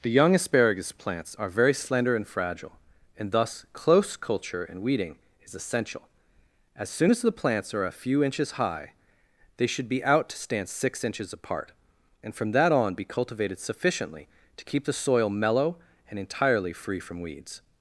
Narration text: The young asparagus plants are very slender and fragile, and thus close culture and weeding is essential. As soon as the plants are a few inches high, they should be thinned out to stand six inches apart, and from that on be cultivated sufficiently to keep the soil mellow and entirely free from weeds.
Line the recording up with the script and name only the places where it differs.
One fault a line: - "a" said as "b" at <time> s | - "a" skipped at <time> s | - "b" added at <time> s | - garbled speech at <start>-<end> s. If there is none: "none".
- "thinned" skipped at 10.0 s